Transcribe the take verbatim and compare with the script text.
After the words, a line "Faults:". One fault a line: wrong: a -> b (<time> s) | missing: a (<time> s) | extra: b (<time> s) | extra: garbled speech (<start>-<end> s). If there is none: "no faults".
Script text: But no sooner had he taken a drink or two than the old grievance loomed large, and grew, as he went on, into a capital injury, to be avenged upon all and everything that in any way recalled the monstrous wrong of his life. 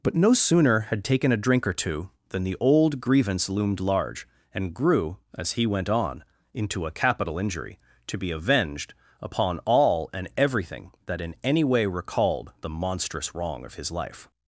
But no sooner had taken a drink or two than the old grievance loomed large, and grew, as he went on, into a capital injury, to be avenged upon all and everything that in any way recalled the monstrous wrong of his life.
Faults:
missing: he (1.0 s)